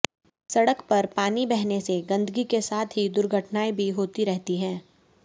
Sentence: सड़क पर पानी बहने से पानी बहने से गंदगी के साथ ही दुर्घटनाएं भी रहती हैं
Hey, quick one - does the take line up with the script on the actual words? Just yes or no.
no